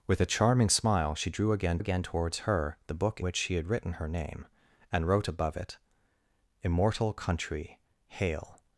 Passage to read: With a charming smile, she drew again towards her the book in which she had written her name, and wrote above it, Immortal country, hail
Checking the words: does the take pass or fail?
fail